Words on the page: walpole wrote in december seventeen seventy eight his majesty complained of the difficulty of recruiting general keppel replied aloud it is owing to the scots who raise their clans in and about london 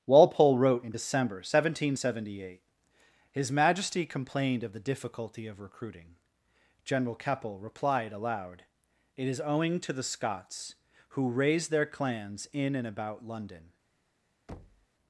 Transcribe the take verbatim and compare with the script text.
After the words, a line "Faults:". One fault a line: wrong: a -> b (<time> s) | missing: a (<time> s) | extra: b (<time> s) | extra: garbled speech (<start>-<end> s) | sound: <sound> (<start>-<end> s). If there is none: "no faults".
walpole wrote in december seventeen seventy eight his majesty complained of the difficulty of recruiting general keppel replied aloud it is owing to the scots who raise their clans in and about london
Faults:
sound: thud (14.5-14.9 s)